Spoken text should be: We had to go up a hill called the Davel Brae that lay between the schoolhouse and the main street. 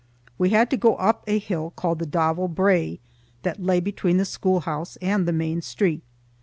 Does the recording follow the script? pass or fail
pass